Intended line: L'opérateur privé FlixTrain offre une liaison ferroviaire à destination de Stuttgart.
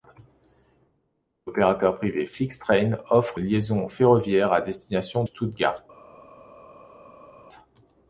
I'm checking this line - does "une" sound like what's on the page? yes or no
no